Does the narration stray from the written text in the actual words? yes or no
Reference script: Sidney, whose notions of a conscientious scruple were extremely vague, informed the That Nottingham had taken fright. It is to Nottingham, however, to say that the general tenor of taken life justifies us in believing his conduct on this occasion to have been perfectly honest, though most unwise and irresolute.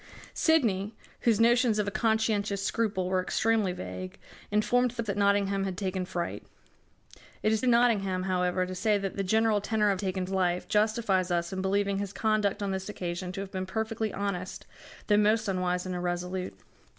no